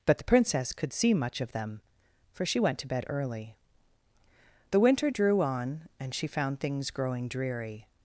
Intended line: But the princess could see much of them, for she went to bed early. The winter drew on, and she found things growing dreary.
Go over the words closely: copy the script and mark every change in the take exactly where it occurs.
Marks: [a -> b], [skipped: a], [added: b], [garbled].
But the princess could see much of them, for she went to bed early. The winter drew on, and she found things growing dreary.